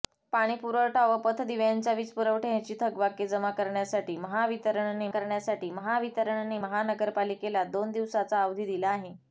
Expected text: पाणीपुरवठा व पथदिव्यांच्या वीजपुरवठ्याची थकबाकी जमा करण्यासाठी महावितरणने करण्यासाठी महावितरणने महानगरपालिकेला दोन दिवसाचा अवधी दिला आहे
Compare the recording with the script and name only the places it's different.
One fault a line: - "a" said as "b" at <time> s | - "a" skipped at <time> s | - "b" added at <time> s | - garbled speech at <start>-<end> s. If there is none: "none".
none